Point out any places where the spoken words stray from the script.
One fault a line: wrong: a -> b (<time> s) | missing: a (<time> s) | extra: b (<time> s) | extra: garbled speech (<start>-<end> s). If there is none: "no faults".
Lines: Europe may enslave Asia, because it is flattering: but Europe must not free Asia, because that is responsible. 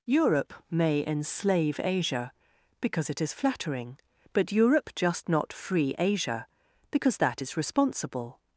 wrong: must -> just (5.0 s)